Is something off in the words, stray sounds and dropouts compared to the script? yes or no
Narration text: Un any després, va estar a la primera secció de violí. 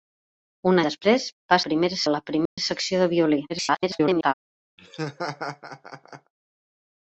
yes